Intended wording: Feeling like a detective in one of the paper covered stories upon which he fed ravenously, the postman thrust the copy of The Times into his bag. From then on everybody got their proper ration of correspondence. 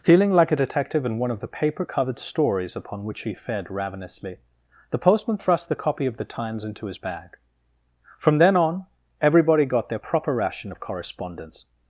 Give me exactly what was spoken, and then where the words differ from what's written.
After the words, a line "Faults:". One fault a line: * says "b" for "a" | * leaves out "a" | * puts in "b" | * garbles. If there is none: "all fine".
Feeling like a detective in one of the paper covered stories upon which he fed ravenously, the postman thrust the copy of The Times into his bag. From then on everybody got their proper ration of correspondence.
Faults:
all fine